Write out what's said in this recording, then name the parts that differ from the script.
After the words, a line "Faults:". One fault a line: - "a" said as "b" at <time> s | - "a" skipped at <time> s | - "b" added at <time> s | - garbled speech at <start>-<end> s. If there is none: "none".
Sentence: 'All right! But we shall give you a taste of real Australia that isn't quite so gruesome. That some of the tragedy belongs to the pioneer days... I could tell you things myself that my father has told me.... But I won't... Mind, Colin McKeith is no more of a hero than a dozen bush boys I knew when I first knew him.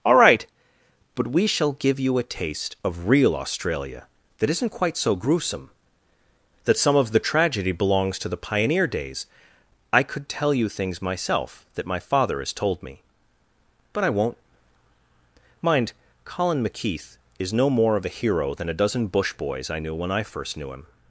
'All right! But we shall give you a taste of real Australia that isn't quite so gruesome. That some of the tragedy belongs to the pioneer days... I could tell you things myself that my father has told me.... But I won't... Mind, Colin McKeith is no more of a hero than a dozen bush boys I knew when I first knew him.
Faults:
none